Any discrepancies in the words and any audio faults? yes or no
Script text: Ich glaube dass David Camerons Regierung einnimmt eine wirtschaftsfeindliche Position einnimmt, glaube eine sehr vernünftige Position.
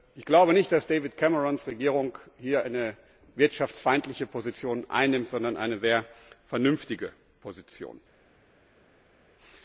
yes